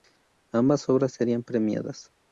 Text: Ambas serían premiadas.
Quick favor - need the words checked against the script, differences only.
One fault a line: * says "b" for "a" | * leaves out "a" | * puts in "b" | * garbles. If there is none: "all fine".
* puts in "obras"